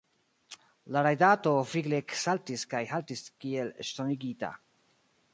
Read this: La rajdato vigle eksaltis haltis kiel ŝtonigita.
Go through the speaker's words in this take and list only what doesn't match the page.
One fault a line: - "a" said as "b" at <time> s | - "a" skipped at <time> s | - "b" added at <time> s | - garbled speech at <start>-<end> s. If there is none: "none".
- "kaj" added at 2.7 s